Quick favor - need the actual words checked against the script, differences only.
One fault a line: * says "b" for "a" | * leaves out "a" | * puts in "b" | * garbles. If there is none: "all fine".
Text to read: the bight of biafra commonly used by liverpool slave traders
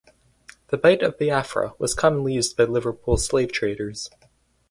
* puts in "was"